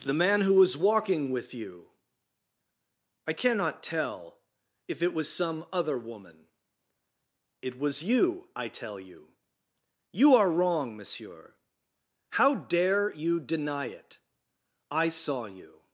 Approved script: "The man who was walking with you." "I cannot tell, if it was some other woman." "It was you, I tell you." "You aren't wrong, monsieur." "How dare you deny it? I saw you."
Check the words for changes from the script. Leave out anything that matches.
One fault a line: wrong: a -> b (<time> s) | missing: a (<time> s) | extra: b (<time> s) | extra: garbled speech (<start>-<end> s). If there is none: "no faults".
wrong: aren't -> are (10.3 s)